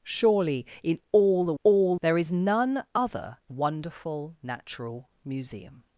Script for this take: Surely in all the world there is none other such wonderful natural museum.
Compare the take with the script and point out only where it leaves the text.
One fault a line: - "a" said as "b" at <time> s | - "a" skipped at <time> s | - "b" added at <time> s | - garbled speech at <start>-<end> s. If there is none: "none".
- "world" said as "all" at 1.6 s
- "such" skipped at 3.4 s